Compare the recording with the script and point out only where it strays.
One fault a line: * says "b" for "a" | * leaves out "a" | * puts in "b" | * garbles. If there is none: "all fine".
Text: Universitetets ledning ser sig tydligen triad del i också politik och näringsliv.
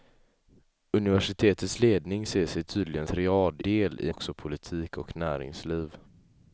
all fine